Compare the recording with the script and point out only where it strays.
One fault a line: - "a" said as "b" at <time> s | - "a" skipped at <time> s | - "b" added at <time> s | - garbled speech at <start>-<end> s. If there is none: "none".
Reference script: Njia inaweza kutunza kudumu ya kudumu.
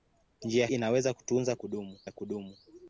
none